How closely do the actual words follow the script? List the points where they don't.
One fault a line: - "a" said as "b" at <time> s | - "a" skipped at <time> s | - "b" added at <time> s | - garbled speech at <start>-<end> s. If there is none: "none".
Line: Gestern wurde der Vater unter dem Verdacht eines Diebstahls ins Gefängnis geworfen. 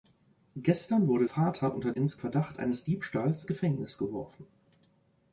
- "der" skipped at 1.3 s
- "dem" said as "ins" at 1.9 s
- "ins" skipped at 3.5 s